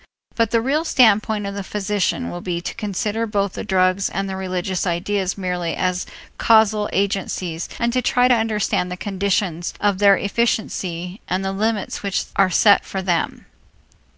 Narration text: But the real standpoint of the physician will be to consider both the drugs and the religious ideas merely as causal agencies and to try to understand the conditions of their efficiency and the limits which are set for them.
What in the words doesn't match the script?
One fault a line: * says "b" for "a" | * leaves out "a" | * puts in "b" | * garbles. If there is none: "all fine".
all fine